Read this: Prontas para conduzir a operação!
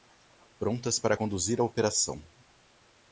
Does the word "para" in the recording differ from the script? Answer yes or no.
no